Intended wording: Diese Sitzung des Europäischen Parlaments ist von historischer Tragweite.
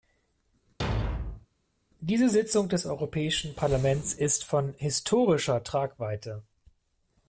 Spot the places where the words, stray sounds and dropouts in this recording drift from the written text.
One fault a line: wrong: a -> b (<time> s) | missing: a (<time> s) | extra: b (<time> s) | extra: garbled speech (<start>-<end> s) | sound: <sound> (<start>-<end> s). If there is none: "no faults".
sound: thud (0.8-1.5 s)